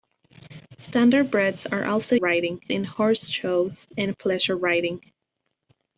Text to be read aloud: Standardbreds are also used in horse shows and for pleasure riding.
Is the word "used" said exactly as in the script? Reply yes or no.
no